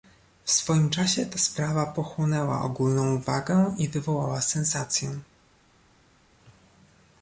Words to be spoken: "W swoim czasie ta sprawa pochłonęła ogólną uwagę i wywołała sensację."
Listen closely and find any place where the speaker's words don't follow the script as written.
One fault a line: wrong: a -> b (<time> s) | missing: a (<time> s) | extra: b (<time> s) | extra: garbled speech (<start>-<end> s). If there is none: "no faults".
no faults